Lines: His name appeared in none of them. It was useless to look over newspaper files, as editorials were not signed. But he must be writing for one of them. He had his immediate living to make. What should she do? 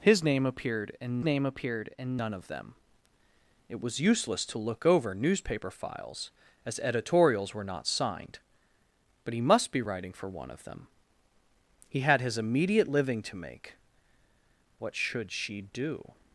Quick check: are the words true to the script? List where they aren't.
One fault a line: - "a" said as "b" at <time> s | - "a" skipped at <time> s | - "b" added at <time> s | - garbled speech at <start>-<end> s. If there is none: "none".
- "name appeared in" added at 1.2 s